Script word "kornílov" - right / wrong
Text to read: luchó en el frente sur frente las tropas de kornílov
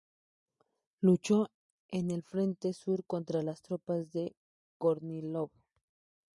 right